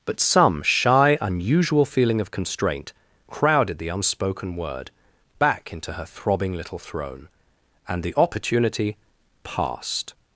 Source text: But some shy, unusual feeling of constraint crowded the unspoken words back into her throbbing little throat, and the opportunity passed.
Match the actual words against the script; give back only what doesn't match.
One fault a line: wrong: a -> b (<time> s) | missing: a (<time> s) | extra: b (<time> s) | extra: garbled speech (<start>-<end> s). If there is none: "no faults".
wrong: words -> word (4.5 s)
wrong: throat -> throne (6.8 s)